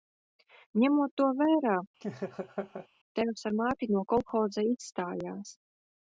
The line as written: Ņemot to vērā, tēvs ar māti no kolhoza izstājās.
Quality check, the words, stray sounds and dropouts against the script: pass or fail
fail